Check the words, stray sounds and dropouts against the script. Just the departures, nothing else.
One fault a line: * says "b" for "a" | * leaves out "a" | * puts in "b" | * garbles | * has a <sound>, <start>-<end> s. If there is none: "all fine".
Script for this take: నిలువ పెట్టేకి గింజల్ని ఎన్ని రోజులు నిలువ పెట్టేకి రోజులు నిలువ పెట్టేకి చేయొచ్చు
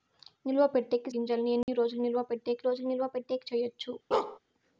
* has a dropout, 1.6-1.7 s
* has a bark, 4.1-4.4 s